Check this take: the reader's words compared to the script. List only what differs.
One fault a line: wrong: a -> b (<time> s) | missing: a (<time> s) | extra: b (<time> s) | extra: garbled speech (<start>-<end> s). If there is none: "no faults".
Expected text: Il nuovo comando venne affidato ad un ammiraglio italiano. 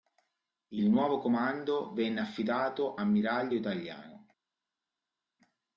missing: ad un (3.0 s)